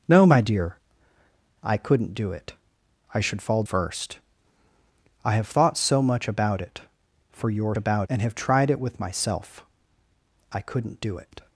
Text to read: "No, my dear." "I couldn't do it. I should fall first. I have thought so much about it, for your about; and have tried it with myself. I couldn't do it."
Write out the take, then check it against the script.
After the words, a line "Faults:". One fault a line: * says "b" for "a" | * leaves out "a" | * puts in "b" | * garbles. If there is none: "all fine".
"No, my dear." "I couldn't do it. I should fall first. I have thought so much about it, for your about; and have tried it with myself. I couldn't do it."
Faults:
all fine